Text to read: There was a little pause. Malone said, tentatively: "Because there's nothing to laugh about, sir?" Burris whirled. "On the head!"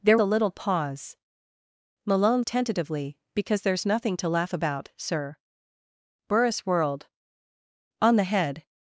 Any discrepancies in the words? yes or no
yes